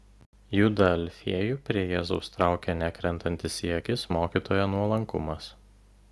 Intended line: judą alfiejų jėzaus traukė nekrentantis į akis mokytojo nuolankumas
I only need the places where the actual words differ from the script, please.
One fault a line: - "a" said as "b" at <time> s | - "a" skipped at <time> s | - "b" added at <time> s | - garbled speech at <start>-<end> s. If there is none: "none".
- "prie" added at 1.7 s